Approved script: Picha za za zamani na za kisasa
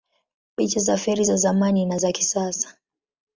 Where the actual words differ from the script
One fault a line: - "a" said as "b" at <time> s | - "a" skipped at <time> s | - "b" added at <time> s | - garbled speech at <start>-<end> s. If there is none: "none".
- "feri" added at 1.0 s